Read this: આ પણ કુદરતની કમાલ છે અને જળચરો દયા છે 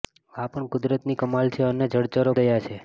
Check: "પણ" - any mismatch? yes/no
no